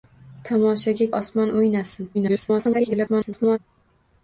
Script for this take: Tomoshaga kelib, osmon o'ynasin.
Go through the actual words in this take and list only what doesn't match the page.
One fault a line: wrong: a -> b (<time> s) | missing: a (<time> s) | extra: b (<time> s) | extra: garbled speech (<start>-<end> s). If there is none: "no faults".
missing: kelib (1.1 s)
extra: garbled speech (2.1-3.6 s)